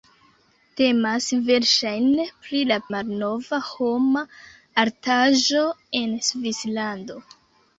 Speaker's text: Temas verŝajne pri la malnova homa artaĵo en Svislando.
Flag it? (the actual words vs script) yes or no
no